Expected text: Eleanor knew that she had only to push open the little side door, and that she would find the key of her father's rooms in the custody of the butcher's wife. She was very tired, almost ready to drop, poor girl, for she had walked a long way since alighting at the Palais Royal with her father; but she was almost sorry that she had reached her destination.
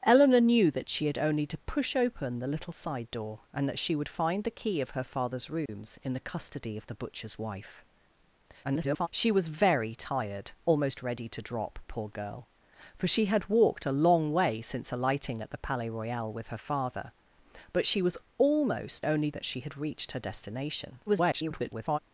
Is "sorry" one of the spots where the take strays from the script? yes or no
yes